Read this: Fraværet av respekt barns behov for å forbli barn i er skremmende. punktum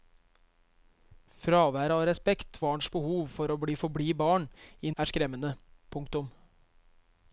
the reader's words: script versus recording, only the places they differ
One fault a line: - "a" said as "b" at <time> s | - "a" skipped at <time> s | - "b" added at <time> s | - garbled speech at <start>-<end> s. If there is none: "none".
none